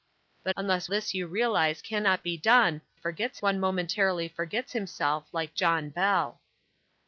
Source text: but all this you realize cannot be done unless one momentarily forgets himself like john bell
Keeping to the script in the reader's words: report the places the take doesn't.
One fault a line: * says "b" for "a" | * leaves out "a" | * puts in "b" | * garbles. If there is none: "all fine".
* says "unless" for "all"
* says "forgets" for "unless"